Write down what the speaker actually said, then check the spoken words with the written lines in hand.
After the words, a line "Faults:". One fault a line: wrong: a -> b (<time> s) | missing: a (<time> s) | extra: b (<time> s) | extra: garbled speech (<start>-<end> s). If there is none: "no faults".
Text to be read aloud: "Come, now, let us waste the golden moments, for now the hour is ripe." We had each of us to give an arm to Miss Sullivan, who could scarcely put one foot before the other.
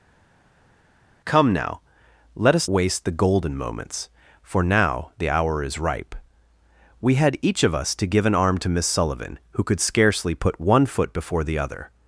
"Come, now, let us waste the golden moments, for now the hour is ripe." We had each of us to give an arm to Miss Sullivan, who could scarcely put one foot before the other.
Faults:
no faults